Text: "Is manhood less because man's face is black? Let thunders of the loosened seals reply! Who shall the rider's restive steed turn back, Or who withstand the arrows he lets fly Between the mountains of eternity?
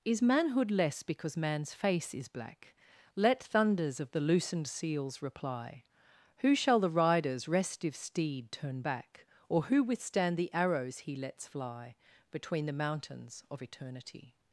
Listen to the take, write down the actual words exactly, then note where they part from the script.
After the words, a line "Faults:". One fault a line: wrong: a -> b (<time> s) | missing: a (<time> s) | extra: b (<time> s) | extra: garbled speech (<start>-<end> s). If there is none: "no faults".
"Is manhood less because man's face is black? Let thunders of the loosened seals reply! Who shall the rider's restive steed turn back, Or who withstand the arrows he lets fly Between the mountains of eternity?
Faults:
no faults